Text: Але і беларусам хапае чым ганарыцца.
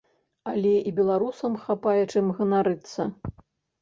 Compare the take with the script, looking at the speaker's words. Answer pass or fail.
pass